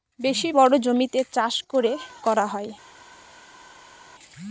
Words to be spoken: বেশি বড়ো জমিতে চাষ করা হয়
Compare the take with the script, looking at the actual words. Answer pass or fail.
fail